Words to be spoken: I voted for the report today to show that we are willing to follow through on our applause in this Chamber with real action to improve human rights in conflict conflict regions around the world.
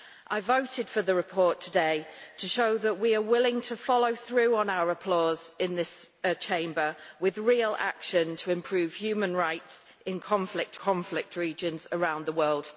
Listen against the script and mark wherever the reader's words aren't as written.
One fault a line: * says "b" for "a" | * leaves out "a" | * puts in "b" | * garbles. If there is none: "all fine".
all fine